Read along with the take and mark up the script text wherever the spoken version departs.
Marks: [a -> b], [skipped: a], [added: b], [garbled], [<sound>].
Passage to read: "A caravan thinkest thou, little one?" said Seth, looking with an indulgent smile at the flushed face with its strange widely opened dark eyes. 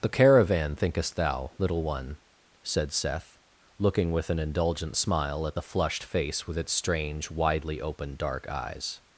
["A -> The] caravan thinkest thou, little one?" said Seth, looking with an indulgent smile at the flushed face with its strange widely opened dark eyes.